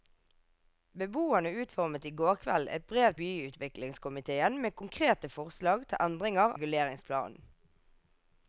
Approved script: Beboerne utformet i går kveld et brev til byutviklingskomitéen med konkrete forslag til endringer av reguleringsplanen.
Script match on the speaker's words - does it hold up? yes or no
no